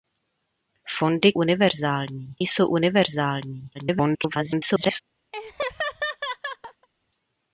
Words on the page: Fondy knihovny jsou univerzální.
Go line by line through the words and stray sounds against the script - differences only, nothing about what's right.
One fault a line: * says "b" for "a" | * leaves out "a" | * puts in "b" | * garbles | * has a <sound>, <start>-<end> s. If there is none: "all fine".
* says "univerzální" for "knihovny"
* garbles
* has a laugh, 5.3-6.9 s